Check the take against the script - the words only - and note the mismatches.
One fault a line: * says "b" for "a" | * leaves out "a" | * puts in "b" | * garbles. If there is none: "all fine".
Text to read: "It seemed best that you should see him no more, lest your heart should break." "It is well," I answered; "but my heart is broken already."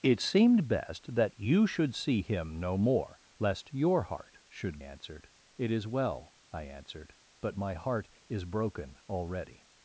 * says "answered" for "break"